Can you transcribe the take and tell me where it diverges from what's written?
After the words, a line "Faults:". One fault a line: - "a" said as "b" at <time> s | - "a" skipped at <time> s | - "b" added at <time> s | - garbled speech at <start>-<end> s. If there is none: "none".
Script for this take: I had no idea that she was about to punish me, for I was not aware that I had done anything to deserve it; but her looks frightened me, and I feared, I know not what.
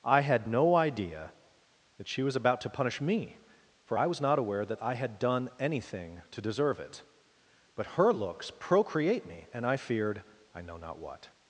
I had no idea that she was about to punish me, for I was not aware that I had done anything to deserve it; but her looks procreate me, and I feared, I know not what.
Faults:
- "frightened" said as "procreate" at 8.5 s